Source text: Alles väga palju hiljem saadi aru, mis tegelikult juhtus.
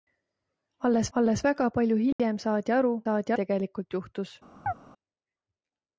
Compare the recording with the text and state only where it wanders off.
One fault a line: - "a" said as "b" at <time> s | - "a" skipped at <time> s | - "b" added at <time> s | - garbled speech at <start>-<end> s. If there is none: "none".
- "alles" added at 1.2 s
- "mis" said as "saadi" at 3.1 s